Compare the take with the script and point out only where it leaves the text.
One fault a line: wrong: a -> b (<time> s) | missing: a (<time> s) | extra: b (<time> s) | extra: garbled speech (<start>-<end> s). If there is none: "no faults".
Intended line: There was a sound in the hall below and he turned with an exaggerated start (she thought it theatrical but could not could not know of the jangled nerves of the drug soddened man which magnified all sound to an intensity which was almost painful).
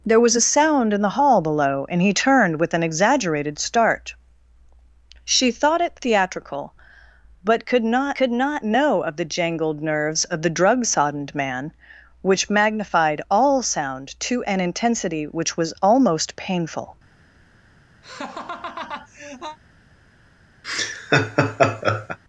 no faults